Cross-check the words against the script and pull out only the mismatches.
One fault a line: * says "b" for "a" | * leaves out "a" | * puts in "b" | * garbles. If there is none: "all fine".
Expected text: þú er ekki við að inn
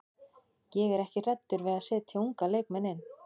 * says "ég" for "þú"
* puts in "hræddur"
* puts in "setja unga leikmenn"